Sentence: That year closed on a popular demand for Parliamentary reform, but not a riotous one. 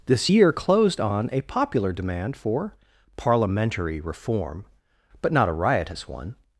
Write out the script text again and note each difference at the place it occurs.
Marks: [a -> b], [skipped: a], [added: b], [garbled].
[That -> This] year closed on a popular demand for Parliamentary reform, but not a riotous one.